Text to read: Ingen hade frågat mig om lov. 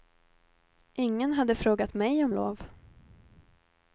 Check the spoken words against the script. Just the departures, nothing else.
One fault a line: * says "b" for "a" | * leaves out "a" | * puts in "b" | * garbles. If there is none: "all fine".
all fine